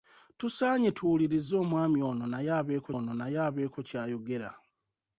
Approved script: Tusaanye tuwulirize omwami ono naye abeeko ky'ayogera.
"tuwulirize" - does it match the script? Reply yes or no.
yes